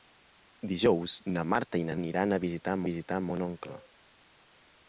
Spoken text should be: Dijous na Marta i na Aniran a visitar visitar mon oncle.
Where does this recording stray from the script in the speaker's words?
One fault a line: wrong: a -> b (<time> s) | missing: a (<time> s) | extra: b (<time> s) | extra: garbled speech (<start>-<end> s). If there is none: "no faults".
no faults